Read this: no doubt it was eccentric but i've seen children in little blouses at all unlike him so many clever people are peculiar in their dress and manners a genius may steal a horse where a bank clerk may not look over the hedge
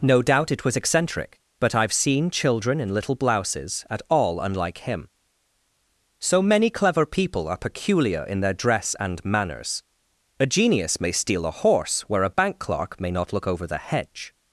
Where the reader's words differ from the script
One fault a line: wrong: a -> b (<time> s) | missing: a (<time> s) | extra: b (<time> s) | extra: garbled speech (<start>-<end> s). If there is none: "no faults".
no faults